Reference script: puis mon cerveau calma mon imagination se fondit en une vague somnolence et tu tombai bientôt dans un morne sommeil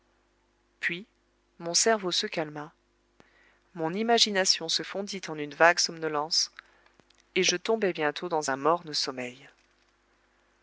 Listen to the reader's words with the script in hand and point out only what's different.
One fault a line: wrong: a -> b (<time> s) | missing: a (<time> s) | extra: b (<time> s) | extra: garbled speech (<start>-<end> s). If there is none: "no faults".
extra: se (2.1 s)
wrong: tu -> je (7.4 s)